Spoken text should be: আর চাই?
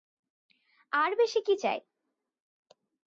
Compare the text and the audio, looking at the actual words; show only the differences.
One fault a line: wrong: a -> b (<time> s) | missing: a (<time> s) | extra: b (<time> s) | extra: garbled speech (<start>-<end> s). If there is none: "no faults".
extra: বেশি কী (1.1 s)